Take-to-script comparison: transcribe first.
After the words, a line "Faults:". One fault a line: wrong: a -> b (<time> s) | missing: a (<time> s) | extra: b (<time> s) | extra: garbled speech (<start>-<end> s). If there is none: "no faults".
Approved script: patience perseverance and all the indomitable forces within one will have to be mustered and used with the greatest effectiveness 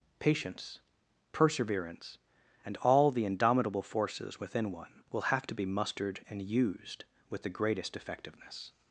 patience perseverance and all the indomitable forces within one will have to be mustered and used with the greatest effectiveness
Faults:
no faults